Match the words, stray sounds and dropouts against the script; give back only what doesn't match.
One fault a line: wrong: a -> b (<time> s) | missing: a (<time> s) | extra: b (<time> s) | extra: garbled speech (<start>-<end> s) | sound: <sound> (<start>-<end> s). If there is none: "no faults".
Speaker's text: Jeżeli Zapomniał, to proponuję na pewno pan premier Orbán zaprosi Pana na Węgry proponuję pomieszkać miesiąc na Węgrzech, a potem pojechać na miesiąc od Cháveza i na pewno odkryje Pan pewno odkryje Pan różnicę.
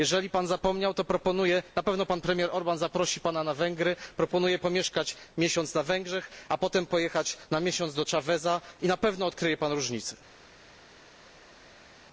extra: Pan (0.3 s)
wrong: od -> do (7.9 s)
missing: pewno odkryje Pan (9.7 s)